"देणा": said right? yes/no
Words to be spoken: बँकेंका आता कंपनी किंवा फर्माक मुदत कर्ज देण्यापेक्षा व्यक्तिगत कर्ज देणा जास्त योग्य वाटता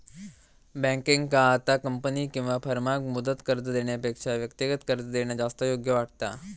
yes